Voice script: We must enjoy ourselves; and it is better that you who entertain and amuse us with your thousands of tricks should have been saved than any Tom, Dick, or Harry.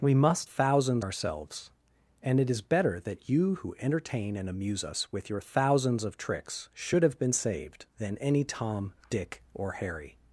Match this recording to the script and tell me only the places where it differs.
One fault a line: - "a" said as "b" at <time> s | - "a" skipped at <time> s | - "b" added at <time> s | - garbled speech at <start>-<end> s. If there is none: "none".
- "enjoy" said as "thousands" at 0.4 s